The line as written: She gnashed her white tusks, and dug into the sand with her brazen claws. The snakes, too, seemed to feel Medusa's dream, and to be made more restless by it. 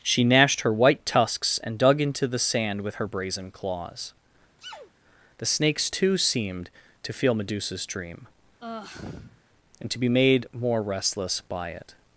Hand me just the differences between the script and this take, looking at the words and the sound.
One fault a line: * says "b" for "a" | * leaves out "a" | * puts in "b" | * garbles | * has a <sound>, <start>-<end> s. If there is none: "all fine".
* has a sneeze, 4.6-4.9 s
* has a sigh, 8.6-9.4 s